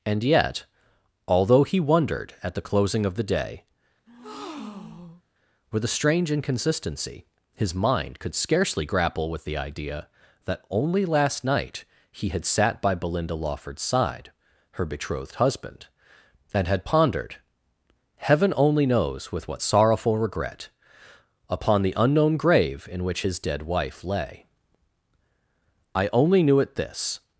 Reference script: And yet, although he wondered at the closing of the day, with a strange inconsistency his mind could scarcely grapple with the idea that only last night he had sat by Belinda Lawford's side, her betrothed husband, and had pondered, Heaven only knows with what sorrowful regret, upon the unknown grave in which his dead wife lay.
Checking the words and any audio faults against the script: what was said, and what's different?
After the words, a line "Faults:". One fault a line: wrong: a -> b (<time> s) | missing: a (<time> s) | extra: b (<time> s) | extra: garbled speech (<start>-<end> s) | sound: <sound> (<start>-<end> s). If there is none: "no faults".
And yet, although he wondered at the closing of the day, with a strange inconsistency his mind could scarcely grapple with the idea that only last night he had sat by Belinda Lawford's side, her betrothed husband, and had pondered, Heaven only knows with what sorrowful regret, upon the unknown grave in which his dead wife lay. "I only knew it this
Faults:
sound: breath (4.1-5.2 s)
extra: I only knew it this (25.9 s)